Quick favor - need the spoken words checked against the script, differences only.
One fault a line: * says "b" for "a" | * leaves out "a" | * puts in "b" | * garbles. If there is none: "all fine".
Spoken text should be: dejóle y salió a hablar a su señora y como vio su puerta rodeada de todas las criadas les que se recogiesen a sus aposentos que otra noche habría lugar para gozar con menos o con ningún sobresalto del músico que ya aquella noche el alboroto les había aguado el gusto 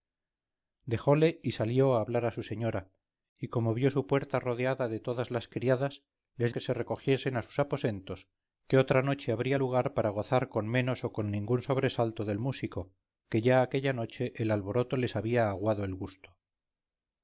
all fine